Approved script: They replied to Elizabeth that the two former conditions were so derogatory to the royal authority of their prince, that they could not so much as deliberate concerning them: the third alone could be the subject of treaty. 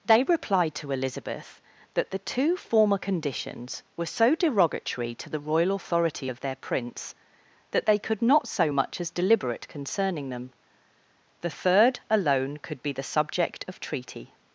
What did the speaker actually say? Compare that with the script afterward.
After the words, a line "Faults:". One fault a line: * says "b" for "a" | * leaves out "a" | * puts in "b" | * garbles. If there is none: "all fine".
They replied to Elizabeth that the two former conditions were so derogatory to the royal authority of their prince, that they could not so much as deliberate concerning them: the third alone could be the subject of treaty.
Faults:
all fine